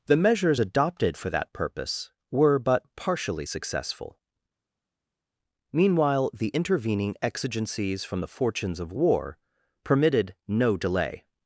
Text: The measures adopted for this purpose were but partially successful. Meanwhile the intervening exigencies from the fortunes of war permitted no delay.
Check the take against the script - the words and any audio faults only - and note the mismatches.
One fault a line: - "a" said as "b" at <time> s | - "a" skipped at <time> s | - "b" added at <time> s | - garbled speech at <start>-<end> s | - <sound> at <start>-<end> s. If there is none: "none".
- "this" said as "that" at 1.3 s